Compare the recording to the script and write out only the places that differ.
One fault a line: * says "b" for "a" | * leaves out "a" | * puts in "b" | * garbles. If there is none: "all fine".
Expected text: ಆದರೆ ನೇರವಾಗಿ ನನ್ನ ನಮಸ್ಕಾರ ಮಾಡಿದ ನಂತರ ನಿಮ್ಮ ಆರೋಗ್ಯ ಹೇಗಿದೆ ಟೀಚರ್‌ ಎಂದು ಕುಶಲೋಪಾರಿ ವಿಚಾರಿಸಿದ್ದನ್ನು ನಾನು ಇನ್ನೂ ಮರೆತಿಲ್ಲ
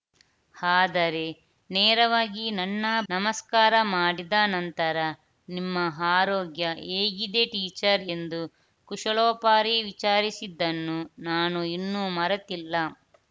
all fine